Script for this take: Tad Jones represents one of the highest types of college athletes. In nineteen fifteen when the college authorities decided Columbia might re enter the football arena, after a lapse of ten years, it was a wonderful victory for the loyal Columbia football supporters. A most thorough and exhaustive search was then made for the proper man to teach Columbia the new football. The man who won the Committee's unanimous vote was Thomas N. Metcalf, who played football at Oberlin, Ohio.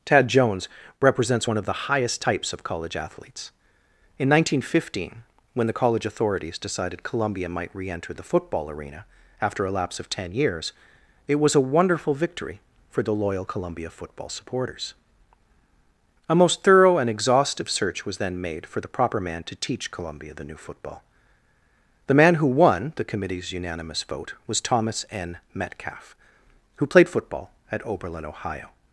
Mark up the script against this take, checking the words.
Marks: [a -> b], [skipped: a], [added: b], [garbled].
Tad Jones represents one of the highest types of college athletes. In nineteen fifteen when the college authorities decided Columbia might re enter the football arena, after a lapse of ten years, it was a wonderful victory for the loyal Columbia football supporters. A most thorough and exhaustive search was then made for the proper man to teach Columbia the new football. The man who won the Committee's unanimous vote was Thomas N. Metcalf, who played football at Oberlin, Ohio.